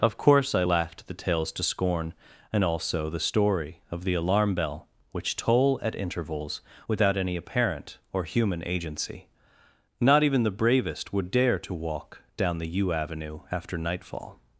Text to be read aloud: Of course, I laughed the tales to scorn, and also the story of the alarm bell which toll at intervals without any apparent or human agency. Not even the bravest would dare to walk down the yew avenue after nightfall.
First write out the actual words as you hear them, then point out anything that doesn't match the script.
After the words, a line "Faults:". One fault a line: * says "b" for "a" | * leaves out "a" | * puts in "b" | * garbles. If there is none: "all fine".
Of course, I laughed the tales to scorn, and also the story of the alarm bell which toll at intervals without any apparent or human agency. Not even the bravest would dare to walk down the yew avenue after nightfall.
Faults:
all fine